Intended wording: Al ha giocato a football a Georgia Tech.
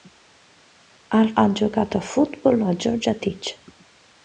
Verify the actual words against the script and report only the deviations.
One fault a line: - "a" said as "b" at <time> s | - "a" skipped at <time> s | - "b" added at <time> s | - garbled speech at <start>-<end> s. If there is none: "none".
none